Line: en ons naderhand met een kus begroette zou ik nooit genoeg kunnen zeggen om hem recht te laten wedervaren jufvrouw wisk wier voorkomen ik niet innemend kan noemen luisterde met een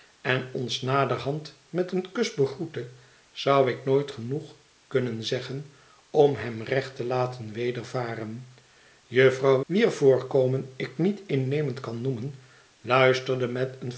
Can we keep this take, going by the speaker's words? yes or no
no